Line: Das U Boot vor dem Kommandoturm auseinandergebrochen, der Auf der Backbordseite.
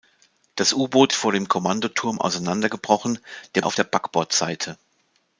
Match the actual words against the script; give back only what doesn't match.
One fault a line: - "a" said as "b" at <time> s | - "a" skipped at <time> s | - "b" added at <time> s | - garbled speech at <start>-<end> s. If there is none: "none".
none